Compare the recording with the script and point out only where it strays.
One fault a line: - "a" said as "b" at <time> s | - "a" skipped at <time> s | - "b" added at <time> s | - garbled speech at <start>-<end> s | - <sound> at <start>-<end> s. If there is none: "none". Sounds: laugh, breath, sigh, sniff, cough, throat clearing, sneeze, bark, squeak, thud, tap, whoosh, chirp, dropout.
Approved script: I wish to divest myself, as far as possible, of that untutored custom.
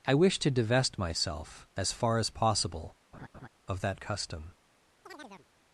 - laugh at 3.1-3.5 s
- "untutored" skipped at 4.0 s
- chirp at 5.0-5.5 s